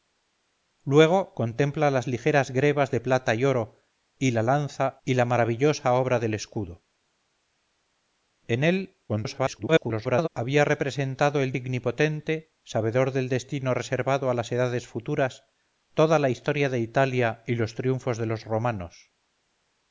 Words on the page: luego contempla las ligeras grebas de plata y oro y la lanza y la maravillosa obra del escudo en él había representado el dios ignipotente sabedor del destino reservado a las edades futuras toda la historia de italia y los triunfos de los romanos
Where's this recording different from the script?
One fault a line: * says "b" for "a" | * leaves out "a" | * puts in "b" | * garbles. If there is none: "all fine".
* garbles
* leaves out "dios"